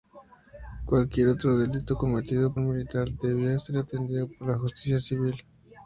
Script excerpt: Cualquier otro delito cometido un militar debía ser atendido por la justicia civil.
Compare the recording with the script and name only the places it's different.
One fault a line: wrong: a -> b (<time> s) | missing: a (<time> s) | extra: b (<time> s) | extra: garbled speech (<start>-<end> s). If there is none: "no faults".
no faults